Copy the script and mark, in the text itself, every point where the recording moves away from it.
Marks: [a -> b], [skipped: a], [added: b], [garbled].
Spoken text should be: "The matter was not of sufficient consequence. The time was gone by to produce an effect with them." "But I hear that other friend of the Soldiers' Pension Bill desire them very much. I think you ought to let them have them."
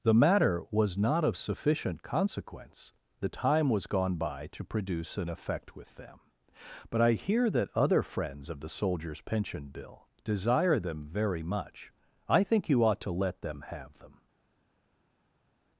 "The matter was not of sufficient consequence. The time was gone by to produce an effect with them." "But I hear that other [friend -> friends] of the Soldiers' Pension Bill desire them very much. I think you ought to let them have them."